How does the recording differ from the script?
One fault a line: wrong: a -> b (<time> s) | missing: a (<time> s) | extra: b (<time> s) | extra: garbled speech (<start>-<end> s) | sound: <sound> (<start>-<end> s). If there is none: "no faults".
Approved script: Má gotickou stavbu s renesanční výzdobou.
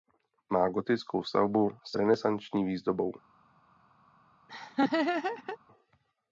sound: laugh (4.5-5.6 s)